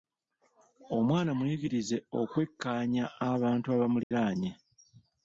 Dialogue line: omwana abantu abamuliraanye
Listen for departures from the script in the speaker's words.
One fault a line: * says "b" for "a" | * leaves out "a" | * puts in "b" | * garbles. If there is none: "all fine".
* puts in "muyigirize okwekkaanya"